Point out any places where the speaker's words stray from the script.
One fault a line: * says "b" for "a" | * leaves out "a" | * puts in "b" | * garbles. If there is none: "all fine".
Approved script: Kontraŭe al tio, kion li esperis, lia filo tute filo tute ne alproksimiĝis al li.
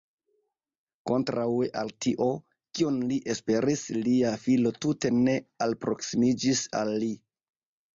* leaves out "filo tute"